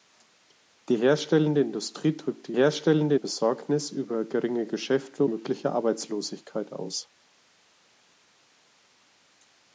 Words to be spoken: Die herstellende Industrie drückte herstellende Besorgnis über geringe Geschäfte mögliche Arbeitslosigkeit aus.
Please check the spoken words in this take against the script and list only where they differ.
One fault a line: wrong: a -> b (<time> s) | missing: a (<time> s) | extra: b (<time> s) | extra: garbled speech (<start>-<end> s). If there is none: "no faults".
no faults